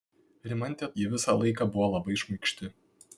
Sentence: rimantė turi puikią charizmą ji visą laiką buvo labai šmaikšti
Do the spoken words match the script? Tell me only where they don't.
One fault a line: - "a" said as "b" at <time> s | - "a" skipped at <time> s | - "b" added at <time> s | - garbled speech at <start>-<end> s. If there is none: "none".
- "turi puikią charizmą" skipped at 0.9 s